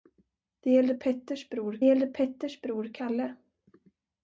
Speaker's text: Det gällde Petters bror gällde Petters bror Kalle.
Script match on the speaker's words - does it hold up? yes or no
yes